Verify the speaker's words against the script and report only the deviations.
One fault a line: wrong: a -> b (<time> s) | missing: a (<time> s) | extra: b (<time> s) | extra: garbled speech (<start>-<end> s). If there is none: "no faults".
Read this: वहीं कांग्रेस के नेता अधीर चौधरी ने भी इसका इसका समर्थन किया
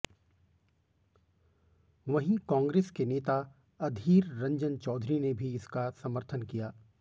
extra: रंजन (4.4 s)
missing: इसका (5.9 s)